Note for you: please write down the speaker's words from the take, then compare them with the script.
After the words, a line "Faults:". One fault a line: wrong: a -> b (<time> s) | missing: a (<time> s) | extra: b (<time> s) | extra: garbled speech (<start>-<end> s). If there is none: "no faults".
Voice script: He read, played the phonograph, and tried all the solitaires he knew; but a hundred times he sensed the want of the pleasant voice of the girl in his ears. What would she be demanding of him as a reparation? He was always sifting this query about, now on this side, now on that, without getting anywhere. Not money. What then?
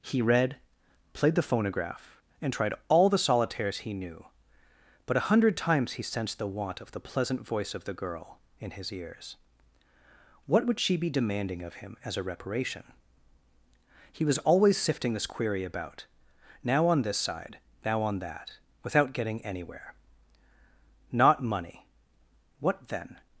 He read, played the phonograph, and tried all the solitaires he knew; but a hundred times he sensed the want of the pleasant voice of the girl in his ears. What would she be demanding of him as a reparation? He was always sifting this query about, now on this side, now on that, without getting anywhere. Not money. What then?
Faults:
no faults